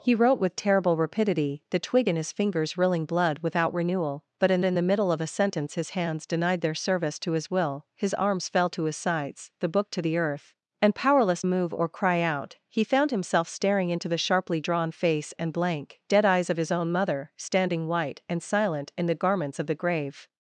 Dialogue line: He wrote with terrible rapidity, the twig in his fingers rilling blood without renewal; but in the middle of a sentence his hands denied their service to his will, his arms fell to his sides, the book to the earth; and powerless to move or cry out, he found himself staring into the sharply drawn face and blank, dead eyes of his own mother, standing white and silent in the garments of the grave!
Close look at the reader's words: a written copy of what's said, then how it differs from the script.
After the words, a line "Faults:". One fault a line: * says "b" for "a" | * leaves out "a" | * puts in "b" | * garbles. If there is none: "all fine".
He wrote with terrible rapidity, the twig in his fingers rilling blood without renewal; but in in the middle of a sentence his hands denied their service to his will, his arms fell to his sides, the book to the earth; and powerless move or cry out, he found himself staring into the sharply drawn face and blank, dead eyes of his own mother, standing white and silent in the garments of the grave!
Faults:
* puts in "in"
* leaves out "to"